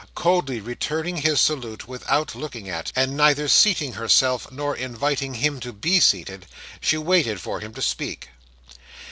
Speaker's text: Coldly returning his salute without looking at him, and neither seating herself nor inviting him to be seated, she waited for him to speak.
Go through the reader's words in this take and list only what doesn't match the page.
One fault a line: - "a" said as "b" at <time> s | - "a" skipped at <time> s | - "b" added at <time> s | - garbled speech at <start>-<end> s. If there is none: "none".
- "him" skipped at 2.9 s